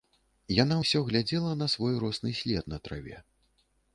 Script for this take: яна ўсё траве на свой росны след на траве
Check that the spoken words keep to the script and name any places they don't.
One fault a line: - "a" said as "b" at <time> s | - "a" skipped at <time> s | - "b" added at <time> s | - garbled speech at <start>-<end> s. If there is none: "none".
- "траве" said as "глядзела" at 1.1 s